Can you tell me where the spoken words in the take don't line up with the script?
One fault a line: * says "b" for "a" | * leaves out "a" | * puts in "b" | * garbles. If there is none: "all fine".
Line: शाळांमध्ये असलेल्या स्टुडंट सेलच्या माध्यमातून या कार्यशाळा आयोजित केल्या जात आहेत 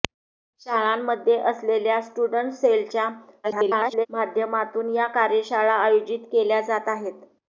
* garbles